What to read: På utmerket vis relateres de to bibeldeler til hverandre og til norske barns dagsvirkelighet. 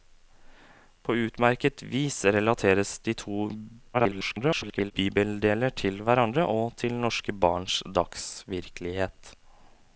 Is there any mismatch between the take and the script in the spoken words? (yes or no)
yes